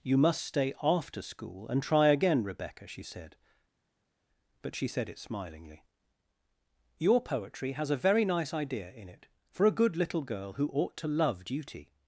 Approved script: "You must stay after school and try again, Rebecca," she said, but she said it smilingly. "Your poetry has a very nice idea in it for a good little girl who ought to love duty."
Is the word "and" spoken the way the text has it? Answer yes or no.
yes